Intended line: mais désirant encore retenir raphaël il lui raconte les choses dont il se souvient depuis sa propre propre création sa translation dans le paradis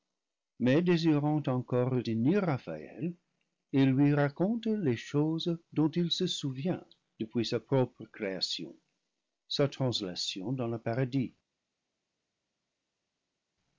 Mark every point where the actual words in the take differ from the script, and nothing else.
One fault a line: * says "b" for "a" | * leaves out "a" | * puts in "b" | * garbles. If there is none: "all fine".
* leaves out "propre"